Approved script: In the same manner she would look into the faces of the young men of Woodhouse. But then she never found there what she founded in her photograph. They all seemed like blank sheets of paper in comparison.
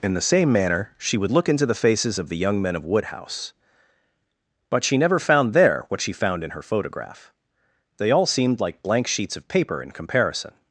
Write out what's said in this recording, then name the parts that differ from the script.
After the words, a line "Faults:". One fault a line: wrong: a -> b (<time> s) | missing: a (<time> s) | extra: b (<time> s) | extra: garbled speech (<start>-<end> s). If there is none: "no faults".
In the same manner she would look into the faces of the young men of Woodhouse. But she never found there what she found in her photograph. They all seemed like blank sheets of paper in comparison.
Faults:
missing: then (4.8 s)
wrong: founded -> found (6.1 s)